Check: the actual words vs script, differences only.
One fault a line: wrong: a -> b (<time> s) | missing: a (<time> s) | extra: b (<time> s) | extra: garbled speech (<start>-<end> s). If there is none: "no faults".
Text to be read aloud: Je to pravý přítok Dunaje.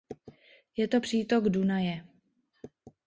missing: pravý (1.0 s)